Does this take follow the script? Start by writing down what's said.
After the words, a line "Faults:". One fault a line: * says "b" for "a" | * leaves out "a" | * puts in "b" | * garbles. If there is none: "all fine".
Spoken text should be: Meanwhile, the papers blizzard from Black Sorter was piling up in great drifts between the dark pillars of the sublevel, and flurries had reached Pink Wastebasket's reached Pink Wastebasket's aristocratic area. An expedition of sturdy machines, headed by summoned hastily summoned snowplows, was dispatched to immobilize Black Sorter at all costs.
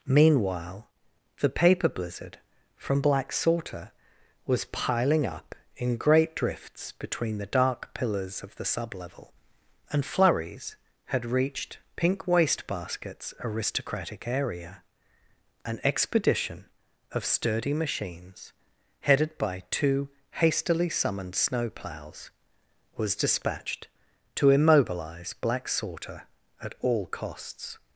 Meanwhile, the paper blizzard from Black Sorter was piling up in great drifts between the dark pillars of the sublevel, and flurries had reached Pink Wastebasket's aristocratic area. An expedition of sturdy machines, headed by two hastily summoned snowplows, was dispatched to immobilize Black Sorter at all costs.
Faults:
* says "paper" for "papers"
* leaves out "reached Pink Wastebasket's"
* says "two" for "summoned"